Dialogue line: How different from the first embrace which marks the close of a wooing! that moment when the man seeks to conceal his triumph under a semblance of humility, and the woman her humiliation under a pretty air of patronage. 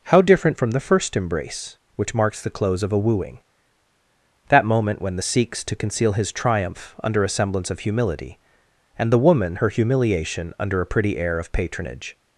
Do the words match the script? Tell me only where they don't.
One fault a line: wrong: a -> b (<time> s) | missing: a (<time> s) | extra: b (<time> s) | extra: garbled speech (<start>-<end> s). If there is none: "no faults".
missing: man (5.2 s)